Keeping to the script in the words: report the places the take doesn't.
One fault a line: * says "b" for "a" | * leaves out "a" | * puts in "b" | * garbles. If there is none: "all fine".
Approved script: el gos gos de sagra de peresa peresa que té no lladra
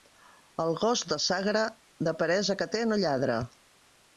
* leaves out "gos"
* leaves out "peresa"